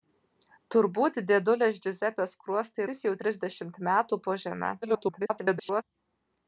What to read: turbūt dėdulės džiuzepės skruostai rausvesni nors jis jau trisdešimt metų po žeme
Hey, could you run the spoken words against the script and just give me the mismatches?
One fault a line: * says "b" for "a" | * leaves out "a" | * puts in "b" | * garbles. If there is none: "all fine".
* leaves out "rausvesni nors"
* garbles